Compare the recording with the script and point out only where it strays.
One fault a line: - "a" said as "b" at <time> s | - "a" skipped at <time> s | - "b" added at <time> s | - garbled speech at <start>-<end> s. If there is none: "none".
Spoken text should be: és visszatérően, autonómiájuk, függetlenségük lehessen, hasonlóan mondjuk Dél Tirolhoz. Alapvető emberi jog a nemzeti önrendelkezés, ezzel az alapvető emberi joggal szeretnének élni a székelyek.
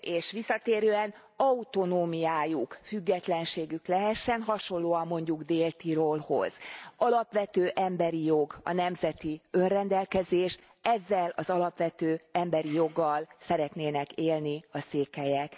none